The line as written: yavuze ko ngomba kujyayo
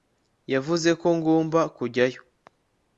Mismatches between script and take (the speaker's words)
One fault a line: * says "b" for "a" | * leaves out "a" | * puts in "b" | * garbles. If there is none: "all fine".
all fine